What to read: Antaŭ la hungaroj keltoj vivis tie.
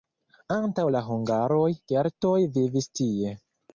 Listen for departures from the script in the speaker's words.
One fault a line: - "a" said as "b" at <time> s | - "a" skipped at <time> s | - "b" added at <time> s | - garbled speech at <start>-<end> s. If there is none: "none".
none